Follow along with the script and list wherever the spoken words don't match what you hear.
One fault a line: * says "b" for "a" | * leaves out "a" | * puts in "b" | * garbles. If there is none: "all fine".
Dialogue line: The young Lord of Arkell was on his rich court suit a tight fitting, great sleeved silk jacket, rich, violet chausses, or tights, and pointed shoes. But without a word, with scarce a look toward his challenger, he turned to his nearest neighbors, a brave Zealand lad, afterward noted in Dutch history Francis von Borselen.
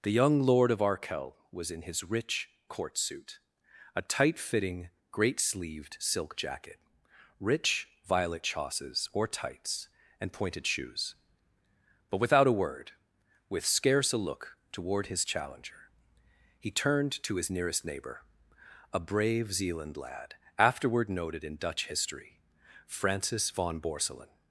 * says "in" for "on"
* says "neighbor" for "neighbors"